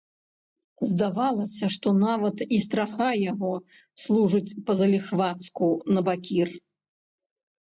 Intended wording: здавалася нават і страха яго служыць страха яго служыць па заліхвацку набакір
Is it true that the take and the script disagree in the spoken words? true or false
true